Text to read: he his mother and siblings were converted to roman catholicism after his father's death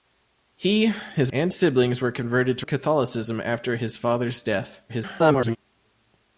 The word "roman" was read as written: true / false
false